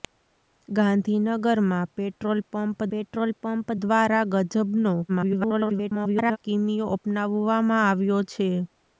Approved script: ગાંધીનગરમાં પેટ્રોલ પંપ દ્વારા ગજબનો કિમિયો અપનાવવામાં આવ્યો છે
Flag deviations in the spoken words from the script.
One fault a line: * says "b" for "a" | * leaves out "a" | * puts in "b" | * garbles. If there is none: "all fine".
* puts in "પેટ્રોલ પંપ"
* garbles